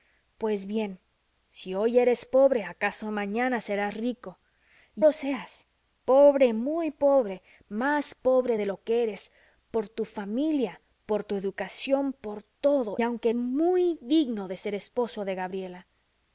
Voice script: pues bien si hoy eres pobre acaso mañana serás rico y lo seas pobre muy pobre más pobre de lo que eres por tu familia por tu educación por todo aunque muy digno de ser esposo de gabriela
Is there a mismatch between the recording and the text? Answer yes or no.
no